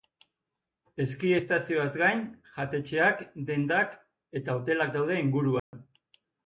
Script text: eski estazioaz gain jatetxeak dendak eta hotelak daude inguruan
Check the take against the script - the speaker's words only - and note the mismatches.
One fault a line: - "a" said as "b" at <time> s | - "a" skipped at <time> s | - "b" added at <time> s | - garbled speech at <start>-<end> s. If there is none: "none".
none